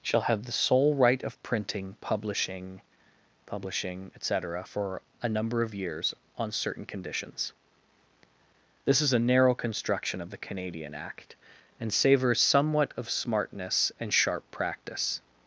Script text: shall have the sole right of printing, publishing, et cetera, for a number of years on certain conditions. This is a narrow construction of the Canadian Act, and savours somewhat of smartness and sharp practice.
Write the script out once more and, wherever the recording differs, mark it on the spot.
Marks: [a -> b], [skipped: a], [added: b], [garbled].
shall have the sole right of printing, publishing, [added: publishing] et cetera, for a number of years on certain conditions. This is a narrow construction of the Canadian Act, and savours somewhat of smartness and sharp practice.